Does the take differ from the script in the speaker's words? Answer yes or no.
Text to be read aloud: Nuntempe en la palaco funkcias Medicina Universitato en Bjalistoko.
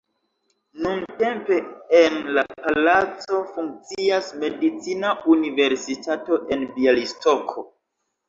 no